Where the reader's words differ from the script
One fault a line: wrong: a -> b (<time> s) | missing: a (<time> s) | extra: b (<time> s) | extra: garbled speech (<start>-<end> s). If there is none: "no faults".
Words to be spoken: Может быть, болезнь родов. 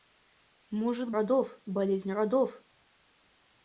wrong: быть -> родов (1.1 s)